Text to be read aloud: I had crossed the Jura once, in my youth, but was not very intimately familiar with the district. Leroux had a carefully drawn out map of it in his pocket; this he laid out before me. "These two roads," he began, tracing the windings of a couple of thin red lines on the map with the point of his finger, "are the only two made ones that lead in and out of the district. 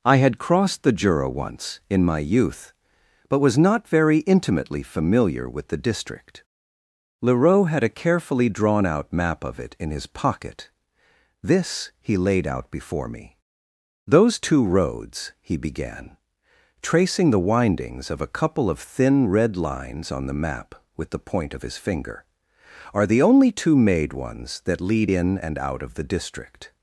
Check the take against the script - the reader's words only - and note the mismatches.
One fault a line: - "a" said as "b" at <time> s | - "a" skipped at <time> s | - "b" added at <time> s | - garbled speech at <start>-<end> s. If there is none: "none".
- "These" said as "Those" at 14.1 s